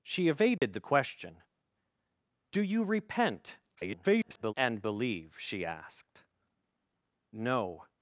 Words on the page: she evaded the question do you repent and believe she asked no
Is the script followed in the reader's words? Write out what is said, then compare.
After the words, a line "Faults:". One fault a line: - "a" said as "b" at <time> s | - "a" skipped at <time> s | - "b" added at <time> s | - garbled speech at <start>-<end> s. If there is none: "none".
she evaded the question do you repent [garbled] and believe she asked no
Faults:
- garbled speech at 3.7-4.5 s